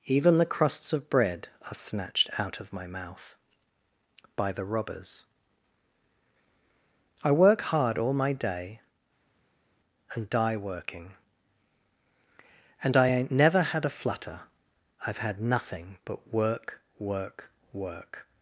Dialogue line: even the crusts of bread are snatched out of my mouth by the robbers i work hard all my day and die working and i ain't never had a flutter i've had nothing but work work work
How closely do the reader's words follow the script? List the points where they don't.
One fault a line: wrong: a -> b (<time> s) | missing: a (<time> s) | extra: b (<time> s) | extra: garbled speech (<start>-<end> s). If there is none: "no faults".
no faults